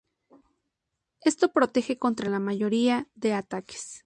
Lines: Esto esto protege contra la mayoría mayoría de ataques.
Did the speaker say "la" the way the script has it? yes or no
yes